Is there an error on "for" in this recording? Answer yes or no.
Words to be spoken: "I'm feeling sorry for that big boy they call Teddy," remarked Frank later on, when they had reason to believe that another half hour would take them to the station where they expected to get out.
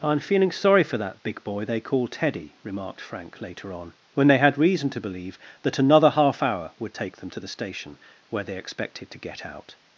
no